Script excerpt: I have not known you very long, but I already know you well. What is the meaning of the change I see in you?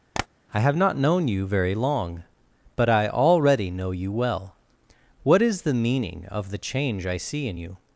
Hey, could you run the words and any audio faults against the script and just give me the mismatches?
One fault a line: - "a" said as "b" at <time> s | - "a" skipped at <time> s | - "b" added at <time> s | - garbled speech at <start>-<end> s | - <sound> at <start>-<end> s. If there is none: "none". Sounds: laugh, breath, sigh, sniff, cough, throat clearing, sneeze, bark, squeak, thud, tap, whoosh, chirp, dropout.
- tap at 0.1-0.3 s